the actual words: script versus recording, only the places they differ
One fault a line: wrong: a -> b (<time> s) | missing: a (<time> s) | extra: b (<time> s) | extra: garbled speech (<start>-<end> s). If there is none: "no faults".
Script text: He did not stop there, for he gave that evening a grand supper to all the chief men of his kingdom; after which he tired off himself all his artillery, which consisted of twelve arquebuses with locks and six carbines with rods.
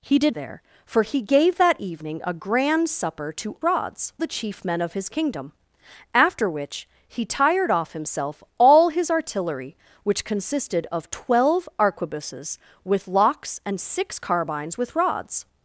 missing: not stop (0.3 s)
wrong: all -> rods (3.6 s)